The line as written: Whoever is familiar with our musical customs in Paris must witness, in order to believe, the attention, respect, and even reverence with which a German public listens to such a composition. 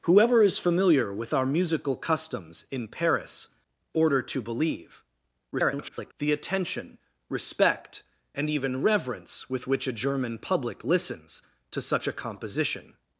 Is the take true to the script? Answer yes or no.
no